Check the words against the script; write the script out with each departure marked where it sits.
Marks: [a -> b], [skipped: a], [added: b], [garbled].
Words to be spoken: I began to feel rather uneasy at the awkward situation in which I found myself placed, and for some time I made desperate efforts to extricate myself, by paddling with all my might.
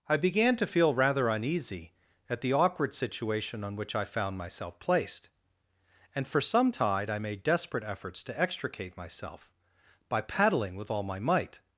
I began to feel rather uneasy at the awkward situation [in -> on] which I found myself placed, and for some [time -> tide] I made desperate efforts to extricate myself, by paddling with all my might.